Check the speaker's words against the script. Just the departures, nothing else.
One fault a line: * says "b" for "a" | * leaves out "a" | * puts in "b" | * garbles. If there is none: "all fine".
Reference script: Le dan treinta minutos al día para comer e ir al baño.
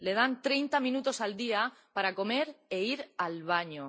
all fine